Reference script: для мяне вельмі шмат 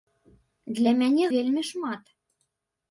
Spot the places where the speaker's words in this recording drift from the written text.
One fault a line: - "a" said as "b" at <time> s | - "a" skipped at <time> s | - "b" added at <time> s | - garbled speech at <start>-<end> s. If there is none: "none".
none